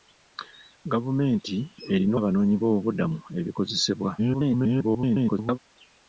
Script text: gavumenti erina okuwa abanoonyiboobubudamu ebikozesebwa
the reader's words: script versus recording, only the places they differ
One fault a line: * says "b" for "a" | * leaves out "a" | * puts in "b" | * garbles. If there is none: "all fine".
* leaves out "okuwa"
* garbles